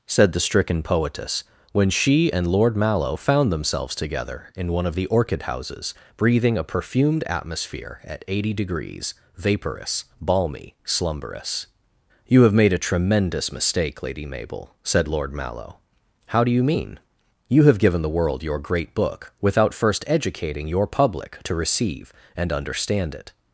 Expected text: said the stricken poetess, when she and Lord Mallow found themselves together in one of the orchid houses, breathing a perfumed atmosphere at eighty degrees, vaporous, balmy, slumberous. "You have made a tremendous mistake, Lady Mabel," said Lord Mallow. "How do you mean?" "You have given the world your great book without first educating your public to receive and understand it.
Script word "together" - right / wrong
right